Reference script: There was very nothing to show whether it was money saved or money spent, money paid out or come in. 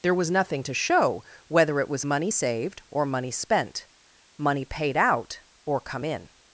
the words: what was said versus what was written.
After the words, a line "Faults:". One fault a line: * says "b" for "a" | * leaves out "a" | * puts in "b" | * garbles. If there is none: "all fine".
There was nothing to show whether it was money saved or money spent, money paid out or come in.
Faults:
* leaves out "very"